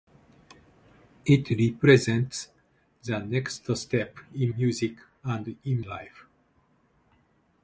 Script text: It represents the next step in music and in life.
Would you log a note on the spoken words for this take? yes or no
no